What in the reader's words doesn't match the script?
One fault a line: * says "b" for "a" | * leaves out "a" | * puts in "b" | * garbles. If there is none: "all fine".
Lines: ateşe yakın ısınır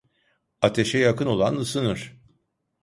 * puts in "olan"